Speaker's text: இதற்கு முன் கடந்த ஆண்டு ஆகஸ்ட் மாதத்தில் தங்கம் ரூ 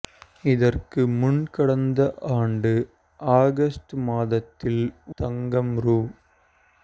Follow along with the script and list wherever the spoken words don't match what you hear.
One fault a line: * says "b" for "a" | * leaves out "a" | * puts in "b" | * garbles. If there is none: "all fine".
all fine